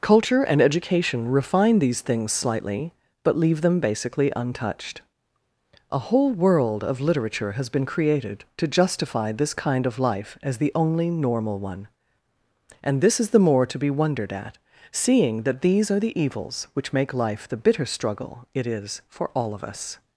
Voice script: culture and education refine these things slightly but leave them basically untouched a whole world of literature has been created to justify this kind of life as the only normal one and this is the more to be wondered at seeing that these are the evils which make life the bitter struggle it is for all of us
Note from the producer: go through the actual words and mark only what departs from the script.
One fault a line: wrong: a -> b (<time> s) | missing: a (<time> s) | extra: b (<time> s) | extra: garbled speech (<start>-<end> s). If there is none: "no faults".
no faults